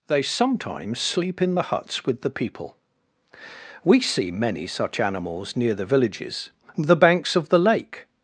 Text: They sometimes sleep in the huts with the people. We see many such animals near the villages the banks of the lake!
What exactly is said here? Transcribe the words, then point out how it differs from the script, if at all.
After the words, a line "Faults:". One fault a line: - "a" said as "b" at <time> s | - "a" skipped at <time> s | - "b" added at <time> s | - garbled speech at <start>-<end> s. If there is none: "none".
They sometimes sleep in the huts with the people. We see many such animals near the villages the banks of the lake!
Faults:
none